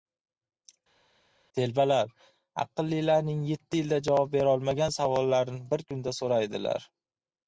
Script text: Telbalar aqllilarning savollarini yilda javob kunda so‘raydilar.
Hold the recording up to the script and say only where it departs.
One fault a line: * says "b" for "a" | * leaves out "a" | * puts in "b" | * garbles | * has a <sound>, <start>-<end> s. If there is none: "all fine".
* says "yetti" for "savollarini"
* puts in "berolmagan savollarini bir"